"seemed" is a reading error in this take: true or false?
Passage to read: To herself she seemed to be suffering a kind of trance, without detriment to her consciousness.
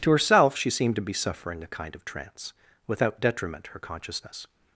false